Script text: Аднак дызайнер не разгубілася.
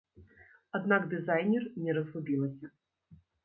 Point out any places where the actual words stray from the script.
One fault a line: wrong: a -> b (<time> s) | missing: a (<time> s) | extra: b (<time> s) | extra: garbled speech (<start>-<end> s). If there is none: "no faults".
no faults